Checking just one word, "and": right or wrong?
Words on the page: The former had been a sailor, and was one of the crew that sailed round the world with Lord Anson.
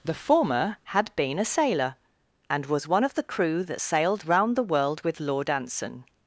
right